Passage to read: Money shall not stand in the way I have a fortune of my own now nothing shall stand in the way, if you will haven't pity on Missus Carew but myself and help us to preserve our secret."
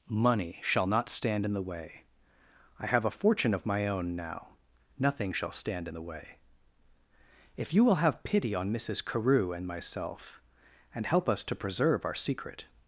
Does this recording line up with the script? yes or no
no